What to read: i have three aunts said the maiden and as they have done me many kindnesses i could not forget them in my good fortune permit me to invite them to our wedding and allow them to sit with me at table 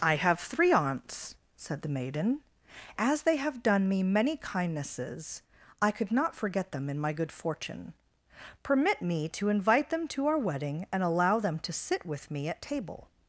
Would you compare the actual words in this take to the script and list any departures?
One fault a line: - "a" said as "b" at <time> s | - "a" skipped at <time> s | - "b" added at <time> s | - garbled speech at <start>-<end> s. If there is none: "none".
- "and" skipped at 2.4 s